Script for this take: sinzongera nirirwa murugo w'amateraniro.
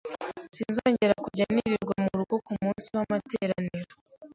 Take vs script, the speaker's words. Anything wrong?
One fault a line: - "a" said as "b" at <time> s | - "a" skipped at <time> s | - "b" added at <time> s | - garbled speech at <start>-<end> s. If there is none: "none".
- "kujya" added at 1.2 s
- "kumunsi" added at 2.5 s